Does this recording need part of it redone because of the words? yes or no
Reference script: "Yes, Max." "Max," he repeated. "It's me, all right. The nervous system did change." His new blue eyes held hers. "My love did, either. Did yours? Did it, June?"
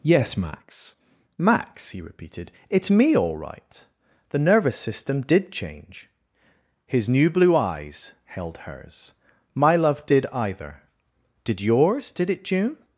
no